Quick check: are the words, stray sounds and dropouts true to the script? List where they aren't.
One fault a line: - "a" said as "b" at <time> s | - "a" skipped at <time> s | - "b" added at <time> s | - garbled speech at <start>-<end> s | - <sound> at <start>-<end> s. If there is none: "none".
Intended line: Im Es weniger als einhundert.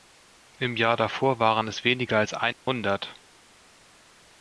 - "Jahr davor waren" added at 0.8 s
- dropout at 2.5-2.7 s